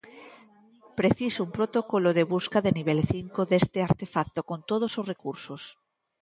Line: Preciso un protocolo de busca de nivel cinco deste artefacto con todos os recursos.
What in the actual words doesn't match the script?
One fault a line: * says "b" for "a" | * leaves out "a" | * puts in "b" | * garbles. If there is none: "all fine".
all fine